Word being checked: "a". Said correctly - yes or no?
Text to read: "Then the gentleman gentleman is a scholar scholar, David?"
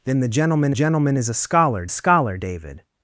yes